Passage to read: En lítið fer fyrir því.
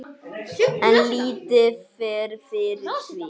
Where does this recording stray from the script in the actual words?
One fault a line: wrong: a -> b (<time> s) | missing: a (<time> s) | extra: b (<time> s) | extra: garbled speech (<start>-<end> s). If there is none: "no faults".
no faults